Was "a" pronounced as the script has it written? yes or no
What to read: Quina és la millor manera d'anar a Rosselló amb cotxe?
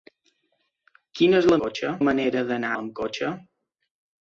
no